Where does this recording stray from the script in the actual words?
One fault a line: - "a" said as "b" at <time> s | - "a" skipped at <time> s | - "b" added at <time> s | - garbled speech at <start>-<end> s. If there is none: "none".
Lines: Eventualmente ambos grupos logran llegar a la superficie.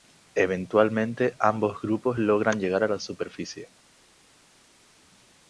none